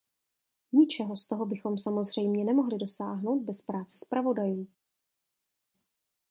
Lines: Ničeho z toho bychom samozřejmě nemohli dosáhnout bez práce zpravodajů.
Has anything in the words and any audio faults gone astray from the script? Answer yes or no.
no